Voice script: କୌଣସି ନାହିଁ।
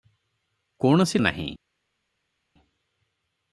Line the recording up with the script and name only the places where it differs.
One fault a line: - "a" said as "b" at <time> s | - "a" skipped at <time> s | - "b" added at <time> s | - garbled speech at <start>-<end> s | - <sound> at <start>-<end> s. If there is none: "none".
none